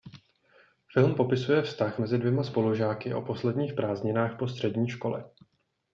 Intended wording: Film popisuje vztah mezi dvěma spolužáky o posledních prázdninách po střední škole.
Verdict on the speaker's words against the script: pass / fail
pass